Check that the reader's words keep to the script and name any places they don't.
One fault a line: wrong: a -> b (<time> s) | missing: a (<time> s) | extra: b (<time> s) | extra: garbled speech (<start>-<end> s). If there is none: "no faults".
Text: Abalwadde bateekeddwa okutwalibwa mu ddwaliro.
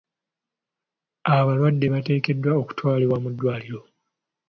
no faults